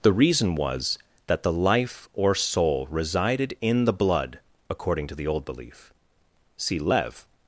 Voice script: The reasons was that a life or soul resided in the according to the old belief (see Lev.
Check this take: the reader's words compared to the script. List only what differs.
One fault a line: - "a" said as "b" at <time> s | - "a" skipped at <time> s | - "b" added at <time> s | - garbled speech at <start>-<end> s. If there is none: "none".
- "reasons" said as "reason" at 0.1 s
- "a" said as "the" at 1.4 s
- "blood" added at 3.9 s